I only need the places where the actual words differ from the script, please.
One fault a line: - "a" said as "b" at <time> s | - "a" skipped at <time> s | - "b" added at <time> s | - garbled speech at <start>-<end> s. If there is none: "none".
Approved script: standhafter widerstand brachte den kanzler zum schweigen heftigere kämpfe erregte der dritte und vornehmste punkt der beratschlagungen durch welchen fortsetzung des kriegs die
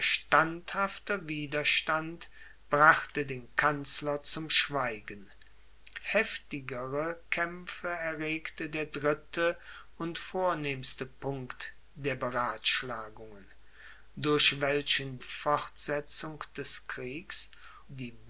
none